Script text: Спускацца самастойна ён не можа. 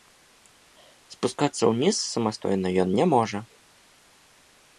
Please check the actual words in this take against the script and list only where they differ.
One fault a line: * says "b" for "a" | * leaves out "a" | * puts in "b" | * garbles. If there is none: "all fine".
* puts in "ўніз"